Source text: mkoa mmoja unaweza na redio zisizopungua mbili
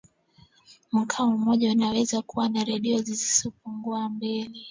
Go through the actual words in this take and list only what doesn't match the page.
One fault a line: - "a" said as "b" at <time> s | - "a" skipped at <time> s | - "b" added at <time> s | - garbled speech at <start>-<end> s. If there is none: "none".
- "kuwa" added at 2.2 s